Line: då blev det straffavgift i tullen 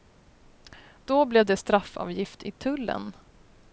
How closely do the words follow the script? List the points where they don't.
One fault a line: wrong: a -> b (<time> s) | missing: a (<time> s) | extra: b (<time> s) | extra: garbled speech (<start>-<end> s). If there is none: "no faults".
no faults